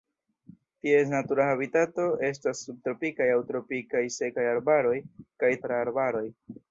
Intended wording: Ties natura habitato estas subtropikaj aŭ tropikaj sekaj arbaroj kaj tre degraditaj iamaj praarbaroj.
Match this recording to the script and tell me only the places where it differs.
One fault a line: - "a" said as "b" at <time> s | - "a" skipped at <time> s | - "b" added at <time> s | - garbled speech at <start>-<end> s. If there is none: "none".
- "tre degraditaj iamaj" skipped at 5.5 s